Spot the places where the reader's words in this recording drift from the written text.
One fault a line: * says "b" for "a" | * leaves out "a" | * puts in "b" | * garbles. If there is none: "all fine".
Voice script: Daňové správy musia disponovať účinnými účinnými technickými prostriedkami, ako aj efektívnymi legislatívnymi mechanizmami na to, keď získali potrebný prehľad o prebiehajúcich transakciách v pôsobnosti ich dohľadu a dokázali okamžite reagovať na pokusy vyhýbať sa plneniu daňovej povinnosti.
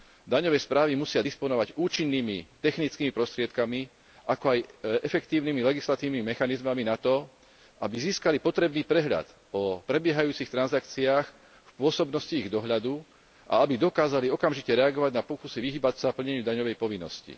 * leaves out "účinnými"
* says "aby" for "keď"
* puts in "aby"